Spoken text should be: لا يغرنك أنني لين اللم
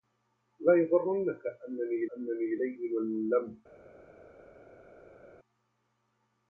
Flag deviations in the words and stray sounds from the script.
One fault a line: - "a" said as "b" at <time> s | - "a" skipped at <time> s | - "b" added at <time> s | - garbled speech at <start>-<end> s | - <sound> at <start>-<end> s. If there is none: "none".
- "أنني" added at 2.2 s